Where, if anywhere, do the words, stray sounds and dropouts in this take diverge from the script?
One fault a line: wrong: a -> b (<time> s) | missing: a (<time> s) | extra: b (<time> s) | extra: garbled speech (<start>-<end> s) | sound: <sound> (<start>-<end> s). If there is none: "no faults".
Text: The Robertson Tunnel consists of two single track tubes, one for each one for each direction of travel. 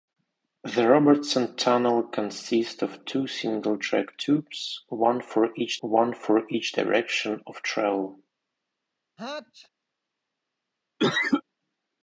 sound: sneeze (9.2-9.7 s)
sound: cough (11.0-11.4 s)